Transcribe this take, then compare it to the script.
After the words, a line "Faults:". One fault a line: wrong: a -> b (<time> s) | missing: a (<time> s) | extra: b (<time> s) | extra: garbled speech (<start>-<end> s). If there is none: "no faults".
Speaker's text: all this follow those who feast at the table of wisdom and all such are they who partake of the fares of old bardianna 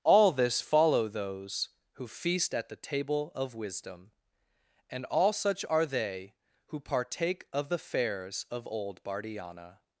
all this follow those who feast at the table of wisdom and all such are they who partake of the fares of old bardianna
Faults:
no faults